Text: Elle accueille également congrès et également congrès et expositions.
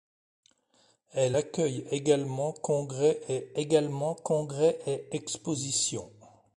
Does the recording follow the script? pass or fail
pass